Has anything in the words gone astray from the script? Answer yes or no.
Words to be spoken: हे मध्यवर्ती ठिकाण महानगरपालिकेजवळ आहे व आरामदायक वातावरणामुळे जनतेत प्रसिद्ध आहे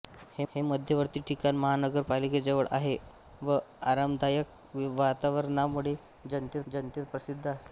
yes